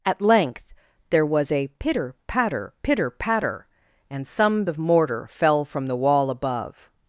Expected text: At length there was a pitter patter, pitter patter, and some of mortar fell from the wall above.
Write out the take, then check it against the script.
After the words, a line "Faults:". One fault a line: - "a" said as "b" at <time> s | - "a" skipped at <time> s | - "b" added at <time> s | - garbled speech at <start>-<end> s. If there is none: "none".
At length there was a pitter patter, pitter patter, and some of mortar fell from the wall above.
Faults:
none